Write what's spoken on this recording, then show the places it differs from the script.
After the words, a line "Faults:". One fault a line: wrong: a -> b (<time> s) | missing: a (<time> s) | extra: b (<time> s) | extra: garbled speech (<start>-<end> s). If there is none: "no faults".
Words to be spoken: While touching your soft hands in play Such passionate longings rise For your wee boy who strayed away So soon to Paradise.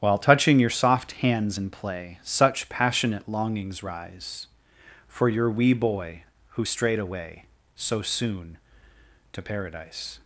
While touching your soft hands in play Such passionate longings rise For your wee boy who strayed away So soon to Paradise.
Faults:
no faults